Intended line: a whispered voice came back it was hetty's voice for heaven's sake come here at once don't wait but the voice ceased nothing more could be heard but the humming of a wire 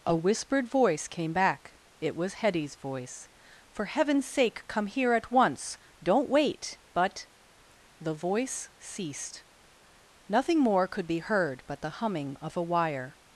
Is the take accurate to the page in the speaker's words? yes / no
yes